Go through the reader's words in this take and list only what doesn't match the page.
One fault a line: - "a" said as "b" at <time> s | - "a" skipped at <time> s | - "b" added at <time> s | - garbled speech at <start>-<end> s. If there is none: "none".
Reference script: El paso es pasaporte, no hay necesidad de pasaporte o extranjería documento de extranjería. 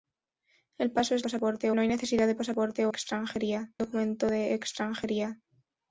none